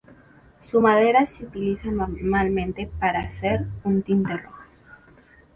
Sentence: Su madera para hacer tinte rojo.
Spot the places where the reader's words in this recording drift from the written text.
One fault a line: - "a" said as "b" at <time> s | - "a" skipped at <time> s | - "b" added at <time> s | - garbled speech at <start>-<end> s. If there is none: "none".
- "se utiliza normalmente" added at 1.3 s
- "un" added at 3.8 s